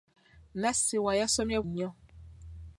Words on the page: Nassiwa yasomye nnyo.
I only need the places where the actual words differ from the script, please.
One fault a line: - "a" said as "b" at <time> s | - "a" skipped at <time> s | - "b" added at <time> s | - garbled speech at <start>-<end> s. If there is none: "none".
none